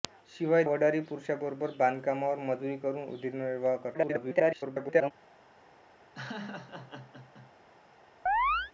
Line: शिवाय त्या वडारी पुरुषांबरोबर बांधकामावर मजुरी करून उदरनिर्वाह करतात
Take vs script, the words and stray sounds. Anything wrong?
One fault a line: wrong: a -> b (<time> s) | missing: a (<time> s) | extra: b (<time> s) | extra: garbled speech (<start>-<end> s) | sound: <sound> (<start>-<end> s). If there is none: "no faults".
missing: त्या (0.6 s)
extra: garbled speech (3.9-5.1 s)
sound: laugh (6.2-7.5 s)
sound: chirp (8.3-8.7 s)